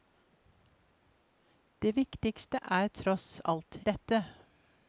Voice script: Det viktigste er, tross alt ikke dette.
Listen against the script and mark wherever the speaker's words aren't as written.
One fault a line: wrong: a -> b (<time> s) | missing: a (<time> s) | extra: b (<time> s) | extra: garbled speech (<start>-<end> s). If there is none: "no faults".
missing: ikke (3.8 s)